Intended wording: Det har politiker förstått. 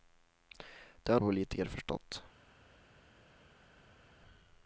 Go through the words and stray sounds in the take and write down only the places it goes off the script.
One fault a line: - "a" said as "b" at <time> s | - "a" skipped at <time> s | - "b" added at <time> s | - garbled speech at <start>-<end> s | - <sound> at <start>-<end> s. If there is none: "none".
none